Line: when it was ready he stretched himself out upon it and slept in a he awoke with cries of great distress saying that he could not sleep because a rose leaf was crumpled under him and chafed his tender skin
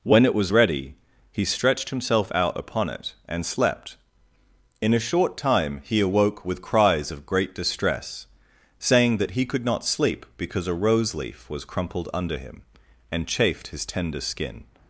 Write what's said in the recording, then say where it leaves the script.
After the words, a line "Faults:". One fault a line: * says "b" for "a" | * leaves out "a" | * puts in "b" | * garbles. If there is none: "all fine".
when it was ready he stretched himself out upon it and slept in a short time he awoke with cries of great distress saying that he could not sleep because a rose leaf was crumpled under him and chafed his tender skin
Faults:
* puts in "short time"